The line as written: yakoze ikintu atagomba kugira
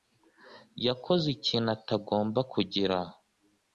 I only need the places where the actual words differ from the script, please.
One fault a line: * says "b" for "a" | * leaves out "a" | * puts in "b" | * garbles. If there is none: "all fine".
all fine